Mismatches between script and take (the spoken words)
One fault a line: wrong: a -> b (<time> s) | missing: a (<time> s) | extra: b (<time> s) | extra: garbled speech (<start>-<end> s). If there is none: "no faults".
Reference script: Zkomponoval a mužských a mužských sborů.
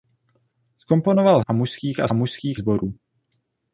no faults